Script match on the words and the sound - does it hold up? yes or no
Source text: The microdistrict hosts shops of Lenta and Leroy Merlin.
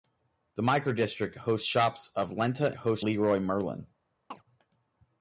no